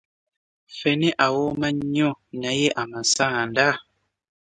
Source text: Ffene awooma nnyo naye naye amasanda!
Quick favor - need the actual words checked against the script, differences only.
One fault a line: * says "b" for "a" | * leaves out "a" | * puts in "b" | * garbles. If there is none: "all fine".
* leaves out "naye"